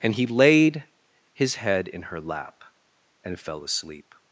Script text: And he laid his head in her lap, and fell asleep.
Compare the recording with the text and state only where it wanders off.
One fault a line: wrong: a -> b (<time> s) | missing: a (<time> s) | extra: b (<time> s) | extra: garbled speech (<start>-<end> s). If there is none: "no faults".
no faults